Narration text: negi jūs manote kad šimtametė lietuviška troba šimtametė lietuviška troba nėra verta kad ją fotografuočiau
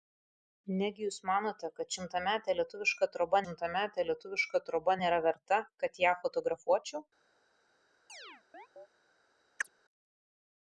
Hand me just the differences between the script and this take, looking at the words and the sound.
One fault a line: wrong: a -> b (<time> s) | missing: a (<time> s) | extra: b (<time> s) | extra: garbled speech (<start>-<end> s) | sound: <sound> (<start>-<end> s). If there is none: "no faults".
sound: chirp (8.1-8.9 s)
sound: chirp (9.6-9.7 s)